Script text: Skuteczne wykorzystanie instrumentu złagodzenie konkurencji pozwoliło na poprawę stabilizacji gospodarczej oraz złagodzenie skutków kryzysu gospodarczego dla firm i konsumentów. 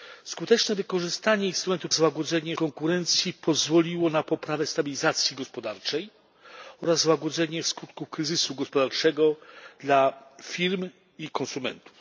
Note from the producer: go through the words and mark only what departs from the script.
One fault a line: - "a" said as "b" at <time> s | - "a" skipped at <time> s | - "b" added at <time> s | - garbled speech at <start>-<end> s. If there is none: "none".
none